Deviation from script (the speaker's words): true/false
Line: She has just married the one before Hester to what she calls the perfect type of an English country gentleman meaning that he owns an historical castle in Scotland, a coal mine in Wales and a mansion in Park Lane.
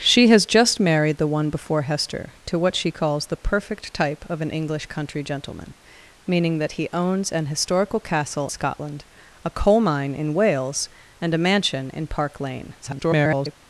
true